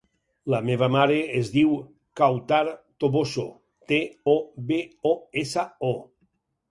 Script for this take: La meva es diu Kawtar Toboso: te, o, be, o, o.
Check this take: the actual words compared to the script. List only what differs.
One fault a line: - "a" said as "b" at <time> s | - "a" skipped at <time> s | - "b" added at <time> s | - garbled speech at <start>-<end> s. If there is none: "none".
- "mare" added at 0.9 s
- "essa" added at 5.4 s